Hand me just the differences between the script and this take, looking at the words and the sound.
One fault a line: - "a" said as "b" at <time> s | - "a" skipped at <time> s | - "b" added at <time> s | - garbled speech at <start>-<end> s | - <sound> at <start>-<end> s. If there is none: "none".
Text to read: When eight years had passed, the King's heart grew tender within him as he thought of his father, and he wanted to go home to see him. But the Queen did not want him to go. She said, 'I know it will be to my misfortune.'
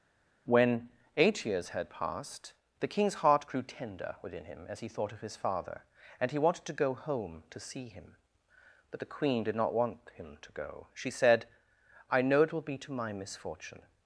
none